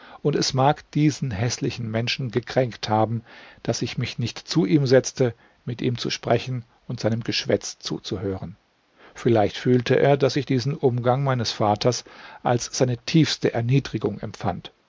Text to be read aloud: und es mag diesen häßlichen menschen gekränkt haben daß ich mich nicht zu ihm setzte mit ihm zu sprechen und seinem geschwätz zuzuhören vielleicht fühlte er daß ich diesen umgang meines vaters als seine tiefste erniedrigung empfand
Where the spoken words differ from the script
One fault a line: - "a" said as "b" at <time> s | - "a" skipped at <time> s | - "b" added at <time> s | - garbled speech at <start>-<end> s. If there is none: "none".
none